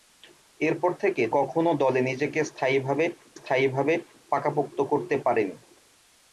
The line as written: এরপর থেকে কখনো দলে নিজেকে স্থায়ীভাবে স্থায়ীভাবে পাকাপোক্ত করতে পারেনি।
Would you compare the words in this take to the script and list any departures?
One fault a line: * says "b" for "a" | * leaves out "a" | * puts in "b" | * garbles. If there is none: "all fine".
all fine